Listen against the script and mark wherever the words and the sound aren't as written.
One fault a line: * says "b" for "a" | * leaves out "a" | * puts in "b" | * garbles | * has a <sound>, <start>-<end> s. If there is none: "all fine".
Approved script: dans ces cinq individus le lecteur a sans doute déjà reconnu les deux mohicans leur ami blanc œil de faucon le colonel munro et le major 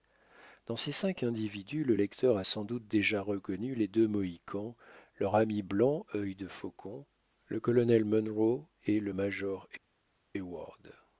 all fine